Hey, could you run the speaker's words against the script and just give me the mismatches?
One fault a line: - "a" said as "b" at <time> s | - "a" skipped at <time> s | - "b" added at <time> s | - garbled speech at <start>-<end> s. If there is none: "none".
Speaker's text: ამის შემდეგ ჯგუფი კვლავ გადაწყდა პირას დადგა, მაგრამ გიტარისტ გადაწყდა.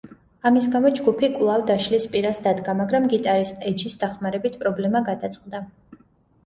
- "შემდეგ" said as "გამო" at 0.8 s
- "გადაწყდა" said as "დაშლის" at 1.7 s
- "ეჯის დახმარებით პრობლემა" added at 3.8 s